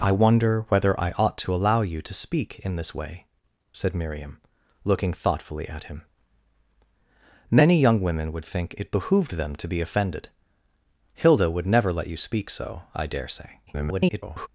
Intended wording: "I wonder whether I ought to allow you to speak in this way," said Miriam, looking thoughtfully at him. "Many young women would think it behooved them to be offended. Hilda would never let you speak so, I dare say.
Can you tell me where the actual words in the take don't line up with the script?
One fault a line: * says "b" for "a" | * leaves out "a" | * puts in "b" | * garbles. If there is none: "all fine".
* garbles